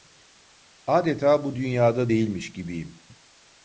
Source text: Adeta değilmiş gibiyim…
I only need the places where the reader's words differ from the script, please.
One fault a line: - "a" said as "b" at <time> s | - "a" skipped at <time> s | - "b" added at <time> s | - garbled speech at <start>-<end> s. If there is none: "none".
- "bu dünyada" added at 1.4 s